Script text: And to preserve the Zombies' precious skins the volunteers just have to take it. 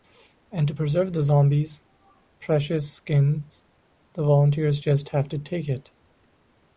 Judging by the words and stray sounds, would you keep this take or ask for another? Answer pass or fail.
pass